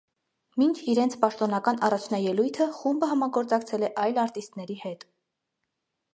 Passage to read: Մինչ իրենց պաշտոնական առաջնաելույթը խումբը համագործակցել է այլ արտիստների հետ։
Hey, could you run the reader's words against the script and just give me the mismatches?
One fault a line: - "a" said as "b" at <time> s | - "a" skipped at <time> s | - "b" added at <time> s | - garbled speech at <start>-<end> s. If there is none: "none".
none